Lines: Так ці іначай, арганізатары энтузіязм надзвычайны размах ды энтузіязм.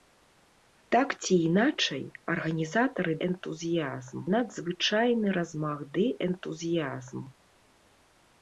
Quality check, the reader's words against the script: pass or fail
pass